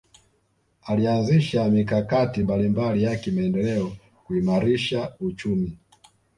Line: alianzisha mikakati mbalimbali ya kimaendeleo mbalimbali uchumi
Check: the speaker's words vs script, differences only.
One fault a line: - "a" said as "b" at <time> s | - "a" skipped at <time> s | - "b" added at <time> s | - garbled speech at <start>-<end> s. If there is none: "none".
- "mbalimbali" said as "kuimarisha" at 4.2 s